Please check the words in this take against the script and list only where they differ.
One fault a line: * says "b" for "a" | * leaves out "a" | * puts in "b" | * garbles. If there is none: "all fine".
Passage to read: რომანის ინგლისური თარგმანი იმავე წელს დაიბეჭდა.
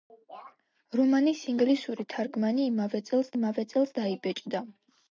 * puts in "იმავე წელს"